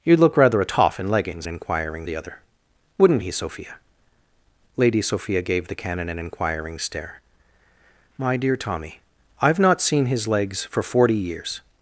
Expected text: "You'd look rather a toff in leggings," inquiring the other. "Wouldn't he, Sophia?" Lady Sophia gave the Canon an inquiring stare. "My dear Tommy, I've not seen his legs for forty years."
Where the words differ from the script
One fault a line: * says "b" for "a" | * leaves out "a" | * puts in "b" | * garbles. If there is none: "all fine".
all fine